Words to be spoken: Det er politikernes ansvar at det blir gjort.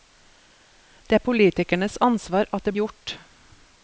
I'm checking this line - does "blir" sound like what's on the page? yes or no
no